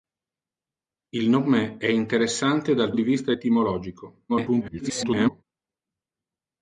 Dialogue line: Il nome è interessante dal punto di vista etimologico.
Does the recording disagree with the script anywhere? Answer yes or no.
yes